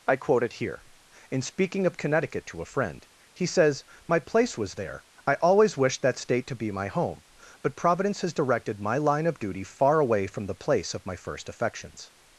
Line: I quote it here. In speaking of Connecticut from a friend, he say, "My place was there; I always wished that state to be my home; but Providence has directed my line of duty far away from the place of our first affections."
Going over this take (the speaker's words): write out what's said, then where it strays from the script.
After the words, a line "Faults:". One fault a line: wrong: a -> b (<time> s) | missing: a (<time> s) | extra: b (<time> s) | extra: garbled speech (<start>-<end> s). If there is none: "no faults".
I quote it here. In speaking of Connecticut to a friend, he says, "My place was there; I always wished that state to be my home; but Providence has directed my line of duty far away from the place of my first affections."
Faults:
wrong: from -> to (2.5 s)
wrong: say -> says (3.5 s)
wrong: our -> my (11.1 s)